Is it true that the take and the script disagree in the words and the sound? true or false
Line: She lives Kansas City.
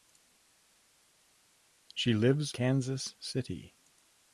false